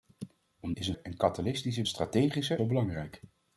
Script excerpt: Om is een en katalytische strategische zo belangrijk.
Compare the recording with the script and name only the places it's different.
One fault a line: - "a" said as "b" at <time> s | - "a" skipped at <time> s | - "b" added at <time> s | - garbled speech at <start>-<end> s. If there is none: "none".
none